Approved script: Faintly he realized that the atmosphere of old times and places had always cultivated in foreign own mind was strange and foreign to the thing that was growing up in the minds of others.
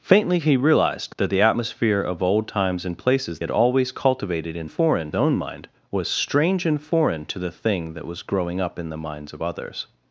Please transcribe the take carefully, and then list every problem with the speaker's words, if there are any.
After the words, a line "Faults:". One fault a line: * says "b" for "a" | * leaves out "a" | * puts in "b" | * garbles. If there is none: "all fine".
Faintly he realized that the atmosphere of old times and places had always cultivated in foreign own mind was strange and foreign to the thing that was growing up in the minds of others.
Faults:
all fine